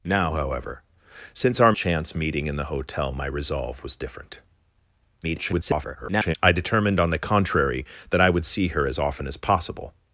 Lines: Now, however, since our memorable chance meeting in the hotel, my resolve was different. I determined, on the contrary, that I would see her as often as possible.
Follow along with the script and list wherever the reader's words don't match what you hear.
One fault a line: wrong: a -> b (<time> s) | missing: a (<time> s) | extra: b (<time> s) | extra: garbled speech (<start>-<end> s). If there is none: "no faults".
missing: memorable (1.7 s)
extra: garbled speech (5.2-6.4 s)